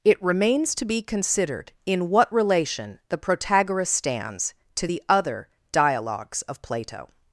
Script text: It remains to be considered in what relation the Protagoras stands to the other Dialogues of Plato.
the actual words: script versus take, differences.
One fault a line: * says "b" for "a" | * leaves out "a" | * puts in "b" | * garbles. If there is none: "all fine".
all fine